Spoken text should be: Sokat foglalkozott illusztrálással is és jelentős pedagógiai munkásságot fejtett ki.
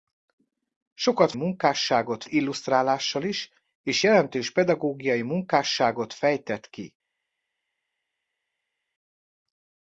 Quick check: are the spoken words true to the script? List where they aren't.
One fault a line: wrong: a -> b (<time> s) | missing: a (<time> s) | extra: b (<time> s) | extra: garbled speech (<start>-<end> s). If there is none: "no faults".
wrong: foglalkozott -> munkásságot (1.3 s)